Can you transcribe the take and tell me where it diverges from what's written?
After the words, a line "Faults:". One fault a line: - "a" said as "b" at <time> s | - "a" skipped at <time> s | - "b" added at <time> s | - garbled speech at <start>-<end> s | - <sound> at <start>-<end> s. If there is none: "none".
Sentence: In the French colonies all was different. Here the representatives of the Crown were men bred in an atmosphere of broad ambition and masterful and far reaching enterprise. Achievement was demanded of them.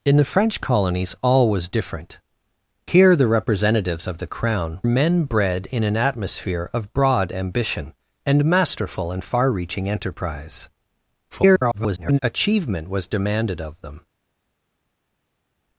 In the French colonies all was different. Here the representatives of the Crown men bred in an atmosphere of broad ambition and masterful and far reaching enterprise. [garbled] Achievement was demanded of them.
Faults:
- "were" skipped at 4.8 s
- garbled speech at 11.3-12.2 s